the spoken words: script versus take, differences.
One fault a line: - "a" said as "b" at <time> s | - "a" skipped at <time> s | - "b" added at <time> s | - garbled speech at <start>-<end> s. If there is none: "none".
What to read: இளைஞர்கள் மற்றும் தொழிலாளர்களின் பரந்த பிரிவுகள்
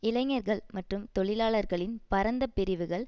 none